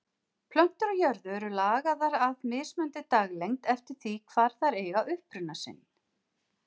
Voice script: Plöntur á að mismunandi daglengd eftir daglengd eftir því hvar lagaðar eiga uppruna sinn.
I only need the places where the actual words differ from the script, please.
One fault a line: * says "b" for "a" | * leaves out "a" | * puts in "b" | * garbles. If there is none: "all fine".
* puts in "jörðu eru lagaðar"
* leaves out "daglengd eftir"
* says "þær" for "lagaðar"